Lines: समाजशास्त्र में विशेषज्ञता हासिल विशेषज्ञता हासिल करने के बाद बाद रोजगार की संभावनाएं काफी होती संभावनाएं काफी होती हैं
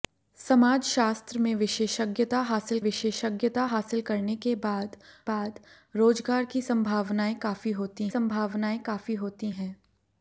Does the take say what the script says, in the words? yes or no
yes